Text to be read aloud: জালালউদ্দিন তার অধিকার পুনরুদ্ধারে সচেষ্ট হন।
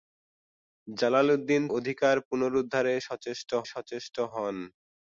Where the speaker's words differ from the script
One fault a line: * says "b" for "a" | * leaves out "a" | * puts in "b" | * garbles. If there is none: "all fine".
* leaves out "তার"
* puts in "সচেষ্ট"